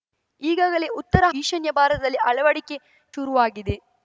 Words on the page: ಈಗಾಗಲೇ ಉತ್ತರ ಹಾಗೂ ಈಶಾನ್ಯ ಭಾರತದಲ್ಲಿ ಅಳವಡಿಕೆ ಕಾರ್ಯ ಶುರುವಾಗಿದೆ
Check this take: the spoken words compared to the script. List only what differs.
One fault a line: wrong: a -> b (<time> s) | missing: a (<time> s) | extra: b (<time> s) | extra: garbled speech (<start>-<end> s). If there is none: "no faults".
missing: ಹಾಗೂ (1.2 s)
missing: ಕಾರ್ಯ (2.8 s)